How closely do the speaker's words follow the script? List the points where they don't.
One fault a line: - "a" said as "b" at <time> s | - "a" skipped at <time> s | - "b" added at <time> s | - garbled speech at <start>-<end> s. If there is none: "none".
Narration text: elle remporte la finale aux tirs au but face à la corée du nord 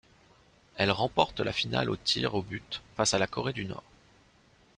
none